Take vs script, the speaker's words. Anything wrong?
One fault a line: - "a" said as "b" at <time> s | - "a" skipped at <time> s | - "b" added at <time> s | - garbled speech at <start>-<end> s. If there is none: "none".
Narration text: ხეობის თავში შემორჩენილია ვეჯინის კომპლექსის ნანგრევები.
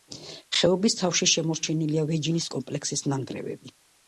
none